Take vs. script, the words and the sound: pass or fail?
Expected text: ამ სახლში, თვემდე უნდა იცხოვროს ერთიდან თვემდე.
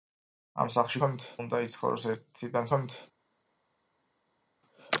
pass